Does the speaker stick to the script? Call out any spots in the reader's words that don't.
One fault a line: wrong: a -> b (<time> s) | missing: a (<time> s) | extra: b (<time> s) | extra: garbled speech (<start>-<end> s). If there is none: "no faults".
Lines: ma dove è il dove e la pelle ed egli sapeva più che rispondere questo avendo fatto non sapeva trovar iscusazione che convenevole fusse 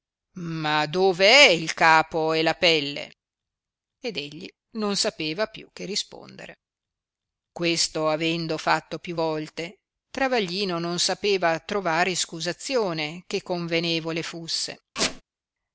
wrong: dove -> capo (1.8 s)
extra: non (4.8 s)
extra: più volte travaglino (9.0 s)